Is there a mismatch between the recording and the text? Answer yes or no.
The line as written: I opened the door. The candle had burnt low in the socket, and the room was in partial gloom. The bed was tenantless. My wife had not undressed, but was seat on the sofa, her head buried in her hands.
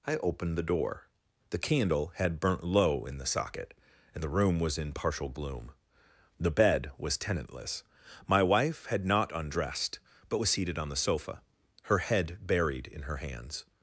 yes